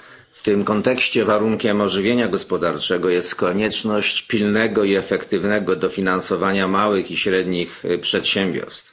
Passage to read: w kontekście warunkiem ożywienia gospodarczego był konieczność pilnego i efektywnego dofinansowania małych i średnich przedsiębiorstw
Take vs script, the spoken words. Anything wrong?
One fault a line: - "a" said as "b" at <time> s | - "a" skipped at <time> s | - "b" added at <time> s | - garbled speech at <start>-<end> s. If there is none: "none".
- "tym" added at 0.4 s
- "był" said as "jest" at 3.1 s